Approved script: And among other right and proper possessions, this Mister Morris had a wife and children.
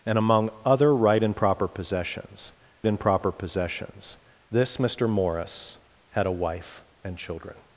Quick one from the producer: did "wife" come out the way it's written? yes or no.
yes